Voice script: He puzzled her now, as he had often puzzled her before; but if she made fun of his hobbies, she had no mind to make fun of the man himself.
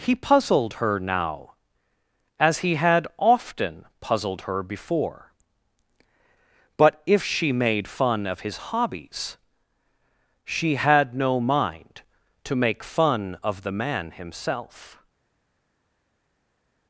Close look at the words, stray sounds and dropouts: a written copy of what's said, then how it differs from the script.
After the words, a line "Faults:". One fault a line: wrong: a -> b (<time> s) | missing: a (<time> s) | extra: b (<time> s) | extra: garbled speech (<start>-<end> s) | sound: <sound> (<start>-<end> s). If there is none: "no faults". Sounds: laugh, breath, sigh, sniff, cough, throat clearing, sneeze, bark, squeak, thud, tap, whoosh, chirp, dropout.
He puzzled her now, as he had often puzzled her before; but if she made fun of his hobbies, she had no mind to make fun of the man himself.
Faults:
no faults